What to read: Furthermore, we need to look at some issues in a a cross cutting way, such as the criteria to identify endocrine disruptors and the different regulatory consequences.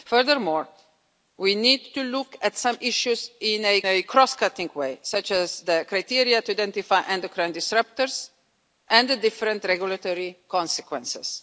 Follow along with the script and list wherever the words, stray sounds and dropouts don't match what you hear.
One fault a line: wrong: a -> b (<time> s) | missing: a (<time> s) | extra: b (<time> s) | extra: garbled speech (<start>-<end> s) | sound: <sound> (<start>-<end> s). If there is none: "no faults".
no faults